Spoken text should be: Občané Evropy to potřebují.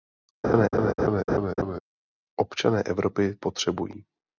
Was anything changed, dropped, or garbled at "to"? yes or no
yes